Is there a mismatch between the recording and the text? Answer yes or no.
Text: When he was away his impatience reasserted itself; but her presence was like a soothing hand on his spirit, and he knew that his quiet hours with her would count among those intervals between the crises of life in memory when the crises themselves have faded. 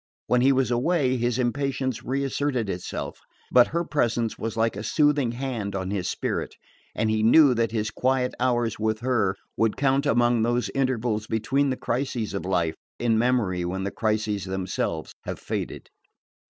no